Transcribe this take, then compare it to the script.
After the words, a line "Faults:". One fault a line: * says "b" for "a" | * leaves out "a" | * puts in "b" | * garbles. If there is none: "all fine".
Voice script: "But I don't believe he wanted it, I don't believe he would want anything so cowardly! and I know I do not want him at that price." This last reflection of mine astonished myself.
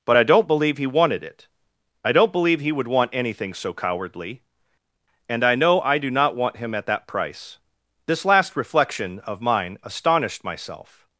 "But I don't believe he wanted it, I don't believe he would want anything so cowardly! and I know I do not want him at that price." This last reflection of mine astonished myself.
Faults:
all fine